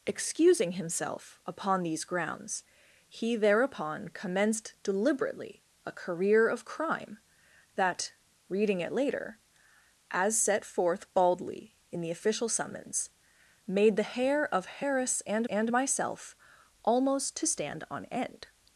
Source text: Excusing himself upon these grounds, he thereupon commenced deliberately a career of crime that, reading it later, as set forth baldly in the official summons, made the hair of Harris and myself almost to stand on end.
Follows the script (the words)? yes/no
no